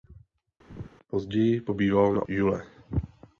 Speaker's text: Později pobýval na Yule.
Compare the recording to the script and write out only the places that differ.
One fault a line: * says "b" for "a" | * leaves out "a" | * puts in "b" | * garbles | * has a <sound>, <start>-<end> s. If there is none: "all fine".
* has a laugh, 0.7-0.9 s